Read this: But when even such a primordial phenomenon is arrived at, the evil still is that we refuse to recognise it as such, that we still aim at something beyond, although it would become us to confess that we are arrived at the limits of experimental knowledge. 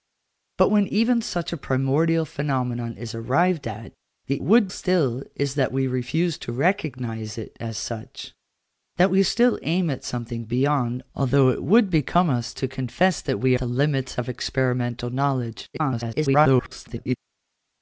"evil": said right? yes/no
no